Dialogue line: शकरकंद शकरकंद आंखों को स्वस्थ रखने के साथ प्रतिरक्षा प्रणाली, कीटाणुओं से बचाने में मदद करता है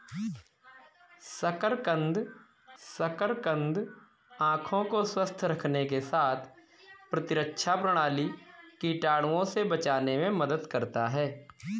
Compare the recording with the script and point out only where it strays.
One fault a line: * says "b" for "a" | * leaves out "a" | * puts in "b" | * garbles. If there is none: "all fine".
all fine